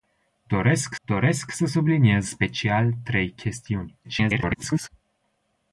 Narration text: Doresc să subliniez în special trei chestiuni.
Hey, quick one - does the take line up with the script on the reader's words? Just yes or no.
no